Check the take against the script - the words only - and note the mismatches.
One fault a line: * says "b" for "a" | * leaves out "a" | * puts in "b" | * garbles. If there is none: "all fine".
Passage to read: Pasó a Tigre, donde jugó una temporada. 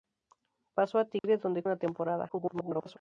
* leaves out "jugó"
* garbles